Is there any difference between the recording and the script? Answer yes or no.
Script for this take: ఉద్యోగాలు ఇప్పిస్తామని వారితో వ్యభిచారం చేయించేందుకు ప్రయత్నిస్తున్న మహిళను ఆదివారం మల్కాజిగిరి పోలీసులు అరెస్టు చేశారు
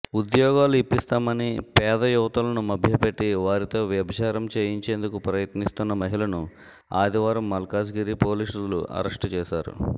yes